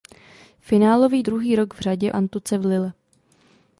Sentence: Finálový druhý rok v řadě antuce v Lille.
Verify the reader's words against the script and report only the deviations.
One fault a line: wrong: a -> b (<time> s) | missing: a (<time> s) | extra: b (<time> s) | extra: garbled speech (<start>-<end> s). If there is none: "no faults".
no faults